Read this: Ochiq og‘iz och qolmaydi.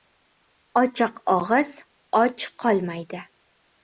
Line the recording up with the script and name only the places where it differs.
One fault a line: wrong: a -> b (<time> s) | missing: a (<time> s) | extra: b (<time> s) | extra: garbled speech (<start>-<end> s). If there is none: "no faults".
no faults